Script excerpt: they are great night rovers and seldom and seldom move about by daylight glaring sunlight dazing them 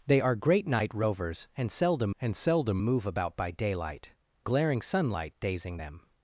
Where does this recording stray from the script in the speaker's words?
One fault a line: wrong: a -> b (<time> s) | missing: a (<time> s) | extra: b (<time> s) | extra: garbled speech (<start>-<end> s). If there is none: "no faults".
no faults